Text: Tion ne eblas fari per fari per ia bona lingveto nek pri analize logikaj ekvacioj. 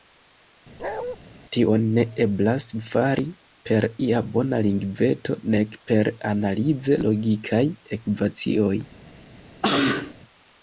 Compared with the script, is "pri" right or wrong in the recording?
wrong